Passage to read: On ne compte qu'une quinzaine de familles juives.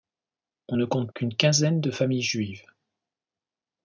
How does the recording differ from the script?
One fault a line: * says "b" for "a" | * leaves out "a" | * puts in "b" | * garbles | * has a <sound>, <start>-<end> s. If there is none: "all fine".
all fine